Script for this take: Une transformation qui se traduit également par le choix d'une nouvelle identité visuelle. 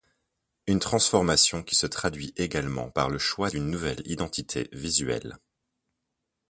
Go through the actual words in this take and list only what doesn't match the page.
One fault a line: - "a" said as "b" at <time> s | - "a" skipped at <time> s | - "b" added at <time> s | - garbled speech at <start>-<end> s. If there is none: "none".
none